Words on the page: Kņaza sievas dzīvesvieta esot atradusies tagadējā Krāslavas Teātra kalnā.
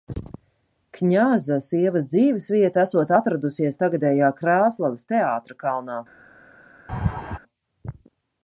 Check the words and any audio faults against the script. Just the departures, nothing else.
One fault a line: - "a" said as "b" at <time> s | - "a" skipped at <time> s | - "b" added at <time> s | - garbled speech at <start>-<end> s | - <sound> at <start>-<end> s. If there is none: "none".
- laugh at 6.9-7.4 s